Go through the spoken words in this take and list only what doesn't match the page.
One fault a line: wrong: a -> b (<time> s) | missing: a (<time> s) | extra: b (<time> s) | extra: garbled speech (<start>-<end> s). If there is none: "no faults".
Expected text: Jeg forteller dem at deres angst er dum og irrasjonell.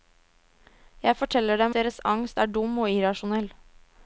missing: at (1.8 s)